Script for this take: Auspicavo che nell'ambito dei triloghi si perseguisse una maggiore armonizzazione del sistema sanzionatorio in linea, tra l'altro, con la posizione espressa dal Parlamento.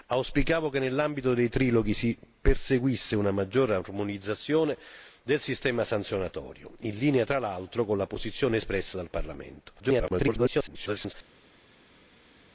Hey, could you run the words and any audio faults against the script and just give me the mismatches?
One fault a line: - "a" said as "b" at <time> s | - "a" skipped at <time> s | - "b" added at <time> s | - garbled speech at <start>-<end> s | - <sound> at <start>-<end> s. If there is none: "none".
- garbled speech at 9.8-11.1 s